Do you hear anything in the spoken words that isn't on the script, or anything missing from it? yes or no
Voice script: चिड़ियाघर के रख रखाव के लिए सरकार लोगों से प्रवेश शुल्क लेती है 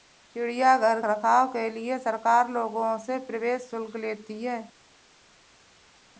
yes